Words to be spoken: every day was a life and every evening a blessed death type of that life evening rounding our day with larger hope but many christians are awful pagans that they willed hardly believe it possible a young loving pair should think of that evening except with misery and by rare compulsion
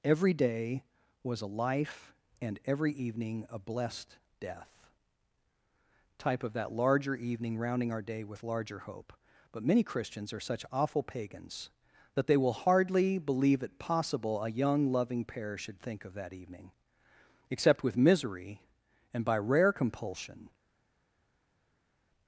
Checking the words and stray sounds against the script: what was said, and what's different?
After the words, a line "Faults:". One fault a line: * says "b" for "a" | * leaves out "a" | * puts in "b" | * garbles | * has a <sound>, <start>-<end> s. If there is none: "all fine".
every day was a life and every evening a blessed death type of that larger evening rounding our day with larger hope but many christians are such awful pagans that they will hardly believe it possible a young loving pair should think of that evening except with misery and by rare compulsion
Faults:
* says "larger" for "life"
* puts in "such"
* says "will" for "willed"